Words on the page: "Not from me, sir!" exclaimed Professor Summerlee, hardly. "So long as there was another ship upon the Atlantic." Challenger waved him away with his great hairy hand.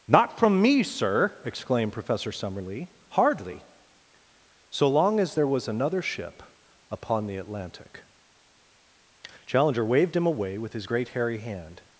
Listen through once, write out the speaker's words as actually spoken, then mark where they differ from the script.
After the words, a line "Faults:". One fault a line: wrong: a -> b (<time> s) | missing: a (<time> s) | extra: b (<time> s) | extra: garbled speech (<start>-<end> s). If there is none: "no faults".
"Not from me, sir!" exclaimed Professor Summerlee, hardly. "So long as there was another ship upon the Atlantic." Challenger waved him away with his great hairy hand.
Faults:
no faults